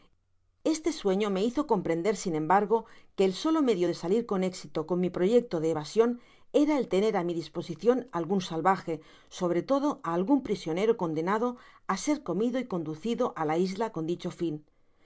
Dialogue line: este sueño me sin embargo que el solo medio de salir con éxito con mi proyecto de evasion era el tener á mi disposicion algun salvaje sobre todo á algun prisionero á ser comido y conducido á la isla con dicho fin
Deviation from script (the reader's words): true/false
true